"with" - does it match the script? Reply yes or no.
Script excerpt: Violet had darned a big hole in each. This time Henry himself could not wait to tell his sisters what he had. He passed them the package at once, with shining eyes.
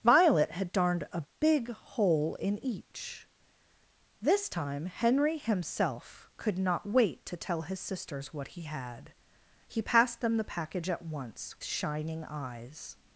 no